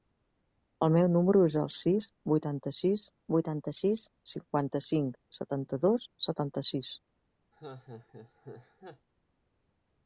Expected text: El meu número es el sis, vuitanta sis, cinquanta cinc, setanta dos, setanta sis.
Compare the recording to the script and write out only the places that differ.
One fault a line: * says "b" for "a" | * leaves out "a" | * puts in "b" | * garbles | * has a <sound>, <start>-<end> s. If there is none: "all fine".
* puts in "vuitanta sis"
* has a laugh, 7.5-9.1 s